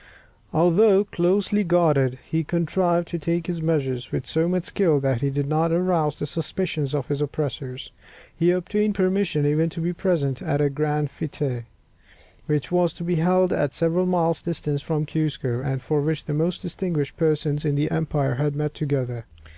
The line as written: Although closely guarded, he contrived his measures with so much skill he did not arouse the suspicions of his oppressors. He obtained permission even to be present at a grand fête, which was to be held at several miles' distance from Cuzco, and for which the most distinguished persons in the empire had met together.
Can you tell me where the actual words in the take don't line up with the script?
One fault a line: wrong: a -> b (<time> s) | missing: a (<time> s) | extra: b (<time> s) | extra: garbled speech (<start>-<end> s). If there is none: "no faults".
extra: to take (3.1 s)
extra: that (5.0 s)